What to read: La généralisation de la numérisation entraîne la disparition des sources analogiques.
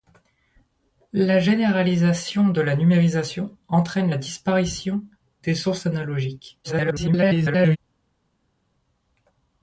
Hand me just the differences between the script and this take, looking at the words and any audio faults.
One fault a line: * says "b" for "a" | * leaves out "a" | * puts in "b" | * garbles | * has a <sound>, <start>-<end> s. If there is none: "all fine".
* garbles